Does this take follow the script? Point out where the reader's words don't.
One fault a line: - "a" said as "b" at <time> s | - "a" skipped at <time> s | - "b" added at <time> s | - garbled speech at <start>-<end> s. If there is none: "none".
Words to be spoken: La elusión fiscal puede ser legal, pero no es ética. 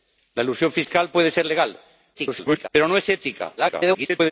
- garbled speech at 2.1-2.7 s
- garbled speech at 3.6-4.3 s